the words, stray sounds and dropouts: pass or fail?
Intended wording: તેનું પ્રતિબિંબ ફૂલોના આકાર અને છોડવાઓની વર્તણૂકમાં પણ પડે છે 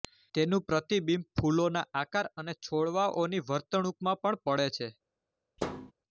fail